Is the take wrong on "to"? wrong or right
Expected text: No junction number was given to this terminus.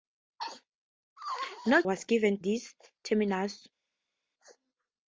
wrong